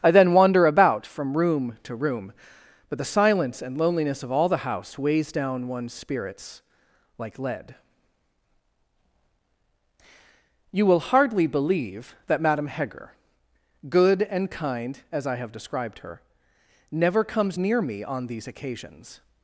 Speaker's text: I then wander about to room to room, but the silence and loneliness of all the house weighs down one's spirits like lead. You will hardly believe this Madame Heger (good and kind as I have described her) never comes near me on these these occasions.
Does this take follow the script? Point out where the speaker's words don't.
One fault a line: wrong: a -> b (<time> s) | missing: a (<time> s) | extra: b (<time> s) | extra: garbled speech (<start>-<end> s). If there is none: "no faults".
wrong: to -> from (1.1 s)
wrong: this -> that (12.3 s)
missing: these (18.5 s)